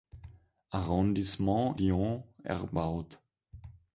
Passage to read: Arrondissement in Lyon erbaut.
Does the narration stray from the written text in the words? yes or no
yes